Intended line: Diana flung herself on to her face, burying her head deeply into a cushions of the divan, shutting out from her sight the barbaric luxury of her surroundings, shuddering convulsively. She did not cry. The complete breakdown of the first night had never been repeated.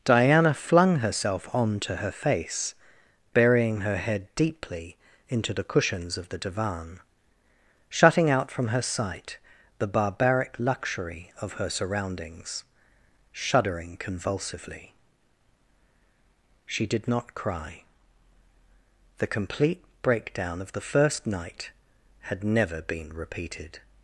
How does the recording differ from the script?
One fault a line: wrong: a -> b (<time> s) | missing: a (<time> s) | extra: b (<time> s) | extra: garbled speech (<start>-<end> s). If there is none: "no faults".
wrong: a -> the (5.5 s)